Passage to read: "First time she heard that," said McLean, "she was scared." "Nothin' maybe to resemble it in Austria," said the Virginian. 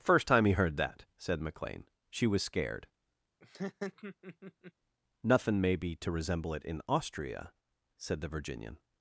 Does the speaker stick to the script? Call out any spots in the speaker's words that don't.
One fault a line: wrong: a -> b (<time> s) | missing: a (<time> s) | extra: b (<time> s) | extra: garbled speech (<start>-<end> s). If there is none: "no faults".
wrong: she -> he (0.5 s)